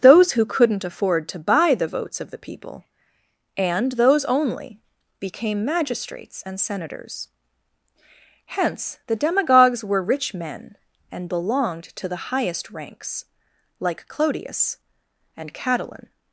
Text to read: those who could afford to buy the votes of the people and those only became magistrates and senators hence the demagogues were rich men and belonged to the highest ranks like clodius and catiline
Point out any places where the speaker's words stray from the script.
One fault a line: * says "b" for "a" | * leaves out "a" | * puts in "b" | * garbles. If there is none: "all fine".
* says "couldn't" for "could"